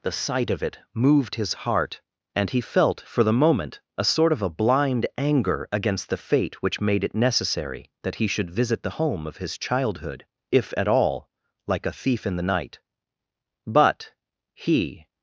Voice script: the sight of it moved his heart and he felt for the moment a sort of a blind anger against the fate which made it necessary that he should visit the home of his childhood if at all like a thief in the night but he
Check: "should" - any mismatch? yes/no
no